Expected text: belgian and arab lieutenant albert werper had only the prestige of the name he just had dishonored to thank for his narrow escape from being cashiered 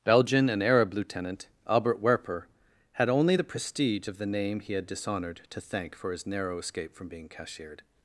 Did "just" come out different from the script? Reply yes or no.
yes